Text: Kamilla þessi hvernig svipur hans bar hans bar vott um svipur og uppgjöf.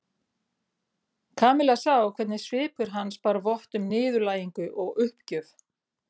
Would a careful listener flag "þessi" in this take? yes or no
yes